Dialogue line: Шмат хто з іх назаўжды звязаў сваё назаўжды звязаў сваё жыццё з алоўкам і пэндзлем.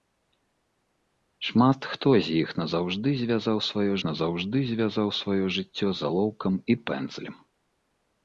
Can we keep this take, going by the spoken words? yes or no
yes